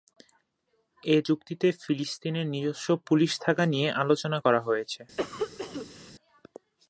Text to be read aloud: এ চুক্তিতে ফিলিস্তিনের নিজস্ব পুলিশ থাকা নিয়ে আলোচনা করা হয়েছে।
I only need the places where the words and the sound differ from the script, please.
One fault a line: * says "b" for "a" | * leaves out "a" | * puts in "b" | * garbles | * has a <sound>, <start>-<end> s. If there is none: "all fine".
* has a cough, 5.2-6.1 s